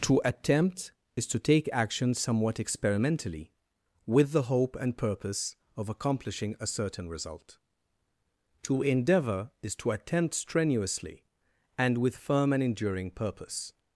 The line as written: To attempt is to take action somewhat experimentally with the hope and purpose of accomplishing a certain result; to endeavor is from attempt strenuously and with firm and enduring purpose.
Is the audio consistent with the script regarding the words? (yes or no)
no